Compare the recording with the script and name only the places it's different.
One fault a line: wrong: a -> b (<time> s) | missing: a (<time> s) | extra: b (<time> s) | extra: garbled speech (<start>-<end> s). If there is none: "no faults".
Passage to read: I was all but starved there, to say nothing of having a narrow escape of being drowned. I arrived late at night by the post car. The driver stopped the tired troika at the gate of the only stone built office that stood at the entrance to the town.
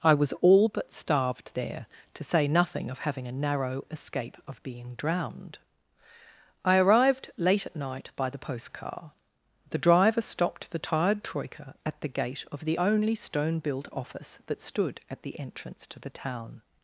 no faults